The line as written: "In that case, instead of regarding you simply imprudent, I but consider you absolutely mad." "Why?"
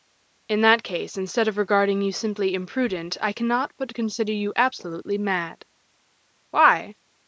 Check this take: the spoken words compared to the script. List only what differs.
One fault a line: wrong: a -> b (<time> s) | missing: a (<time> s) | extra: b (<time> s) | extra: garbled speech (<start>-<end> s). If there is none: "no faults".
extra: cannot (3.3 s)